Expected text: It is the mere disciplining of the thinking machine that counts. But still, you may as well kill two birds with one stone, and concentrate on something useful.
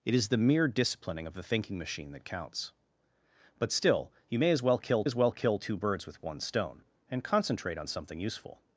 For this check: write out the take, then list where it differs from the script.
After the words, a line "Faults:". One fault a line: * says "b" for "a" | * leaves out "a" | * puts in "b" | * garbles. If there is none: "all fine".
It is the mere disciplining of the thinking machine that counts. But still, you may as well kill as well kill two birds with one stone, and concentrate on something useful.
Faults:
* puts in "as well kill"